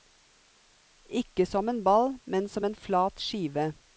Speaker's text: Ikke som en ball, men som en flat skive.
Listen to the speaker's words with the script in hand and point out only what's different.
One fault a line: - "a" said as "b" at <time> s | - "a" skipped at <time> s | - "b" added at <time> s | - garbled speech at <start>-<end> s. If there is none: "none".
none